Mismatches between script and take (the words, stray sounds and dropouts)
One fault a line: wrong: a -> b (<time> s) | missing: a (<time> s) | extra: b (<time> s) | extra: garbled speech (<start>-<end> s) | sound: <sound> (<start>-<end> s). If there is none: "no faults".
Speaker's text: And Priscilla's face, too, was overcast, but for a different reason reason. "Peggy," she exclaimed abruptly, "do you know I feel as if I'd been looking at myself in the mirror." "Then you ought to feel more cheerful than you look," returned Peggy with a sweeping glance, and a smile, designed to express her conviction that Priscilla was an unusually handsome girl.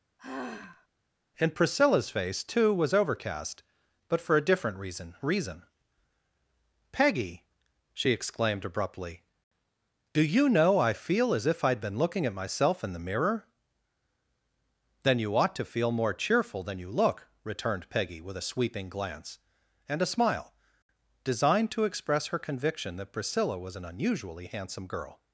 sound: sigh (0.2-0.9 s)